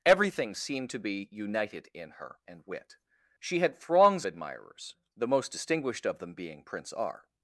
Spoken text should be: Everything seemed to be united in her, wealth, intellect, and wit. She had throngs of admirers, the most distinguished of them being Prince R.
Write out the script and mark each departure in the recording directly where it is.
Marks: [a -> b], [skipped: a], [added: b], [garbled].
Everything seemed to be united in her, [skipped: wealth, intellect,] and wit. She had throngs [skipped: of] admirers, the most distinguished of them being Prince R.